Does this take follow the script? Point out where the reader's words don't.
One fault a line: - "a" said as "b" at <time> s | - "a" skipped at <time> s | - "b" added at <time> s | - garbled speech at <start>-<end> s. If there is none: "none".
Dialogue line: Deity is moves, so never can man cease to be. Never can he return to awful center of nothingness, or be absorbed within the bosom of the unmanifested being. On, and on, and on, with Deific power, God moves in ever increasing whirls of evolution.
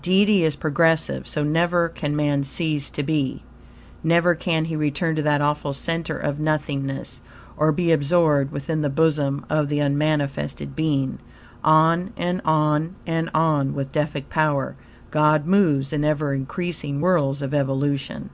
- "moves" said as "progressive" at 0.6 s
- "that" added at 5.2 s